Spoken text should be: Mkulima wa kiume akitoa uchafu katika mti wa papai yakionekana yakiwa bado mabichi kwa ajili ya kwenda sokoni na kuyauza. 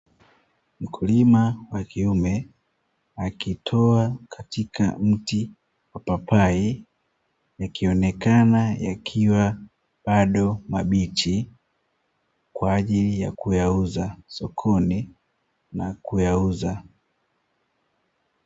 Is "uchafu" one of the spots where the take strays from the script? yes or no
yes